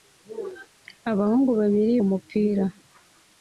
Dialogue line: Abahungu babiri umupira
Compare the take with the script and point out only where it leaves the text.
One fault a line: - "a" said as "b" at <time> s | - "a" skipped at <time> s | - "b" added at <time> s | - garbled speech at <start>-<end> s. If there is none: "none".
none